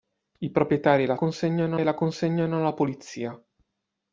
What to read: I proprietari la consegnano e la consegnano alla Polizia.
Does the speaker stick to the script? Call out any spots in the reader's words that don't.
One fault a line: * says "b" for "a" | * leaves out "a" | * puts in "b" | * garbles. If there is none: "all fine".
all fine